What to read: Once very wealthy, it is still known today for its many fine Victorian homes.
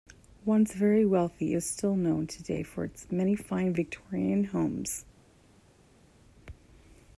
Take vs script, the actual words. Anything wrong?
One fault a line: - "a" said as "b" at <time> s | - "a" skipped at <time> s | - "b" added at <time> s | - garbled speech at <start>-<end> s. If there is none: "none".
none